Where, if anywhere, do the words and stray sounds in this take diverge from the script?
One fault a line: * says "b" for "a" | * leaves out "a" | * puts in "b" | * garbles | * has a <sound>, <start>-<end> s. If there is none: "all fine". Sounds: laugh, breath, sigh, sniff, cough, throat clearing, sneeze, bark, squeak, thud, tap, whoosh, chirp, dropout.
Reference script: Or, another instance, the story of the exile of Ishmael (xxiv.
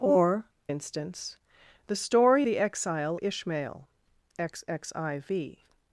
* leaves out "another"
* leaves out "of"
* leaves out "of"